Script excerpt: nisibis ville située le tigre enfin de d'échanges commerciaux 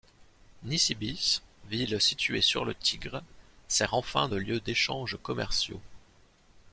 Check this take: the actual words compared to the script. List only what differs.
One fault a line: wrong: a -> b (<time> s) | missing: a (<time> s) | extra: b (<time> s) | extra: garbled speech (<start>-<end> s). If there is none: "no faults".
extra: sur (2.4 s)
extra: sert (3.7 s)
extra: lieu (4.4 s)